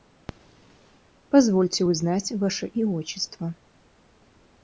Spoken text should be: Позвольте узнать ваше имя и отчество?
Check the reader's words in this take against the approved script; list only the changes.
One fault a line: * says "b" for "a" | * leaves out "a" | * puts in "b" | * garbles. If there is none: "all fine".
* leaves out "имя"